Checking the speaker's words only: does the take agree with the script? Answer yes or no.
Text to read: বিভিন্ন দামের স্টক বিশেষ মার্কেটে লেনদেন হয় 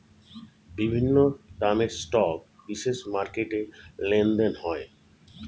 yes